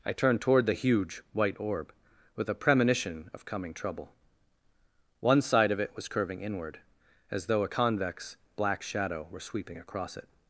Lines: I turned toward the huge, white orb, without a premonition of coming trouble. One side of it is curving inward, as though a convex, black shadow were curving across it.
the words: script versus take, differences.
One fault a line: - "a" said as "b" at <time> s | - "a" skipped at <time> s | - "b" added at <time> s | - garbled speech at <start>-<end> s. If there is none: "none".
- "without" said as "with" at 2.4 s
- "is" said as "was" at 6.0 s
- "curving" said as "sweeping" at 9.4 s